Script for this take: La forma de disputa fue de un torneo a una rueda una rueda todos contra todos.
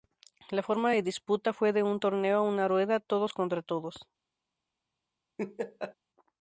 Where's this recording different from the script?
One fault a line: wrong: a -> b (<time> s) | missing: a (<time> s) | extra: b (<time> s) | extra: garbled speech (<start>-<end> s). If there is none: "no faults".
missing: una rueda (3.0 s)